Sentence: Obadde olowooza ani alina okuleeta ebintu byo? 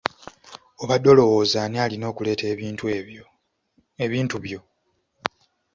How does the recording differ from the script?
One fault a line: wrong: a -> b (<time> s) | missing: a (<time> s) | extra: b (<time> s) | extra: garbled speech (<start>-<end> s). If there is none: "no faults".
no faults